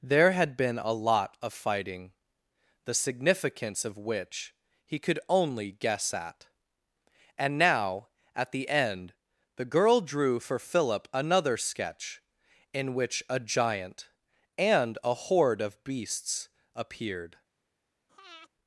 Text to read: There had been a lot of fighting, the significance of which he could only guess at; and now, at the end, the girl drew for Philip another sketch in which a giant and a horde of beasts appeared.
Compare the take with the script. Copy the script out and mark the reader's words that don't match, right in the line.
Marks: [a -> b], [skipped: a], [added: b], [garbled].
There had been a lot of fighting, the significance of which he could only guess at; and now, at the end, the girl drew for Philip another sketch in which a giant and a horde of beasts appeared.